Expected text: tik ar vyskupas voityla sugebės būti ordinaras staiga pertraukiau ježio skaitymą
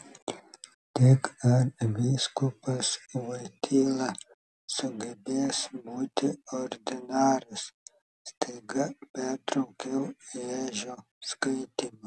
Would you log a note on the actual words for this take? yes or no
no